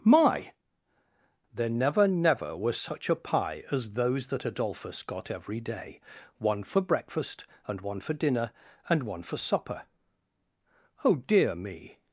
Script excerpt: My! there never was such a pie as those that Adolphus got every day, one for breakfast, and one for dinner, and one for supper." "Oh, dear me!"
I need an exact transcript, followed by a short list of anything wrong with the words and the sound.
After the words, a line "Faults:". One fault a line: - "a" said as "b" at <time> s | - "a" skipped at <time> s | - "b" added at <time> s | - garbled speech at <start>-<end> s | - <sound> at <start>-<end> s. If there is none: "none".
My! there never never was such a pie as those that Adolphus got every day, one for breakfast, and one for dinner, and one for supper." "Oh, dear me!"
Faults:
- "never" added at 2.1 s